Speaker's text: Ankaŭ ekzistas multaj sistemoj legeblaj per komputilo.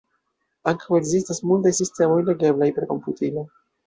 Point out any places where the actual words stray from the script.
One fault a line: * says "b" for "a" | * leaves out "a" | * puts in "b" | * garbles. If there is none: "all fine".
all fine